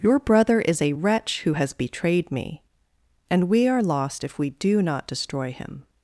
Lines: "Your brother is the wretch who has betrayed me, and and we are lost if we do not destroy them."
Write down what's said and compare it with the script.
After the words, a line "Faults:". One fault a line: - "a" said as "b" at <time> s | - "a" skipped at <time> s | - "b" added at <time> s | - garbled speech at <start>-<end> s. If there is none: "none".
"Your brother is a wretch who has betrayed me, and we are lost if we do not destroy him."
Faults:
- "the" said as "a" at 0.8 s
- "and" skipped at 3.5 s
- "them" said as "him" at 5.5 s